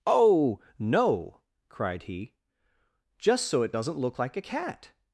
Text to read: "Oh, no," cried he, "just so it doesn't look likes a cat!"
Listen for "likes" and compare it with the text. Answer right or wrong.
wrong